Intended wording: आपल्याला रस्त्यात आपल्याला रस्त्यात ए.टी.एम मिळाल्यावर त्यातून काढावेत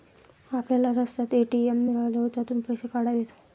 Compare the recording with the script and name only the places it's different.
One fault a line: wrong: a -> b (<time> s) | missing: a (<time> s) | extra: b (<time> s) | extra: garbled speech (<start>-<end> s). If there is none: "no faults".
missing: आपल्याला रस्त्यात (1.3 s)
extra: पैसे (2.6 s)